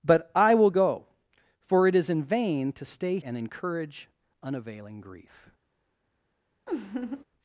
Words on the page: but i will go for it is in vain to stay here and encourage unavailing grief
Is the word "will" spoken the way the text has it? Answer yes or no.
yes